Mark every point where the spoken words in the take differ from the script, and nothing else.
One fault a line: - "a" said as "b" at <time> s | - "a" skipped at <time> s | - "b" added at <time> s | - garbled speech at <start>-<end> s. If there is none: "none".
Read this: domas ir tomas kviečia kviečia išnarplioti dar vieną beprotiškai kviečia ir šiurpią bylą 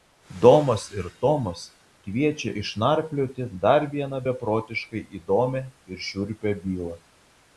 - "kviečia" skipped at 2.5 s
- "kviečia" said as "įdomią" at 5.2 s